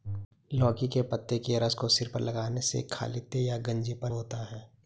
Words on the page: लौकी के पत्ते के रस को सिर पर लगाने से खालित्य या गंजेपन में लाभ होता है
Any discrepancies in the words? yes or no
yes